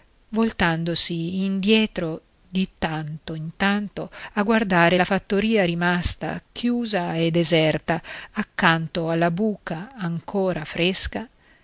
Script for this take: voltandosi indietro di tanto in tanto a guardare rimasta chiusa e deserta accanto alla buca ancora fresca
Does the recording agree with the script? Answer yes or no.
no